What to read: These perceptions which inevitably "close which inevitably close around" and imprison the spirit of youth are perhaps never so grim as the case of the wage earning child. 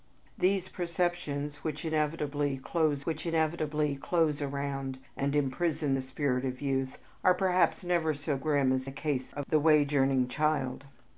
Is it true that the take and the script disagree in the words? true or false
false